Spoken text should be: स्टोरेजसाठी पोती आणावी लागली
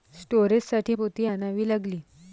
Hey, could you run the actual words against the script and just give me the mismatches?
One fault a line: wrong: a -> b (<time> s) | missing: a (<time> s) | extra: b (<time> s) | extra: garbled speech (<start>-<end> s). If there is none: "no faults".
no faults